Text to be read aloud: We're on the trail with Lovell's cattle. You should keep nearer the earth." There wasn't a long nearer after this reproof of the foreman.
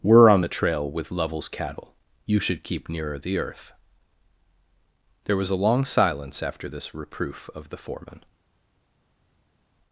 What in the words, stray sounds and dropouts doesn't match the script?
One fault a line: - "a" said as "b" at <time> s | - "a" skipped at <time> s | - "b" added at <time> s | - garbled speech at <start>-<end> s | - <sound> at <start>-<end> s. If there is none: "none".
- "wasn't" said as "was" at 5.4 s
- "nearer" said as "silence" at 5.8 s